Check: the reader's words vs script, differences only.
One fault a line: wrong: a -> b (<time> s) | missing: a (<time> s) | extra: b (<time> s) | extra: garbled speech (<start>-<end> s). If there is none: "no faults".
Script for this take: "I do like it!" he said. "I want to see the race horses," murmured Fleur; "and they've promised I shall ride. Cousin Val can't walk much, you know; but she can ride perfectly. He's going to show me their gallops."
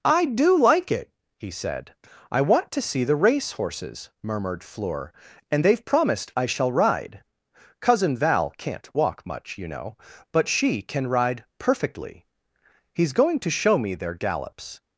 no faults